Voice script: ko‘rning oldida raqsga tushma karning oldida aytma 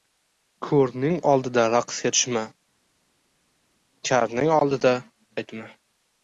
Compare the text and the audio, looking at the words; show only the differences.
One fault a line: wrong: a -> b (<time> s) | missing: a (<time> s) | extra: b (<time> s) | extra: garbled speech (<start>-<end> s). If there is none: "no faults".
no faults